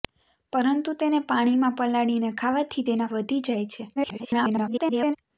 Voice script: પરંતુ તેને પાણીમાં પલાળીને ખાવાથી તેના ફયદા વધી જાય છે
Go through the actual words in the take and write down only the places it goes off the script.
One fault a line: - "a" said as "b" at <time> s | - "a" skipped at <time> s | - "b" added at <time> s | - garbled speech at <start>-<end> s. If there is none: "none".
- "ફયદા" skipped at 3.1 s
- garbled speech at 4.0-5.2 s